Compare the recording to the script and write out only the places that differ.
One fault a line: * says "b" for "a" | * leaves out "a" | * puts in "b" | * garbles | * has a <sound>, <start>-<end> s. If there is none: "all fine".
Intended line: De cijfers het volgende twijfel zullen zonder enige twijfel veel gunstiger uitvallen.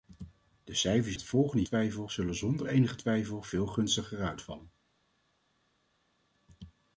all fine